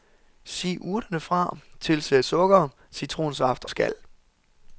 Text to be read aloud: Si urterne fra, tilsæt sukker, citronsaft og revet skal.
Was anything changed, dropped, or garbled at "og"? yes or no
yes